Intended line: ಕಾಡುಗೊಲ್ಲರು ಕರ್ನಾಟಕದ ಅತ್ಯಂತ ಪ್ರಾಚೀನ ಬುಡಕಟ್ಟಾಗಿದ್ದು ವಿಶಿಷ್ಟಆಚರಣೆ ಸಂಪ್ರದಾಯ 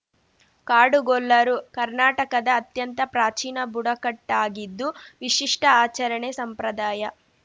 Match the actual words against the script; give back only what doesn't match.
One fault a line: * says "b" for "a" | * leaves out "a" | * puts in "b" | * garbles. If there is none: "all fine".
all fine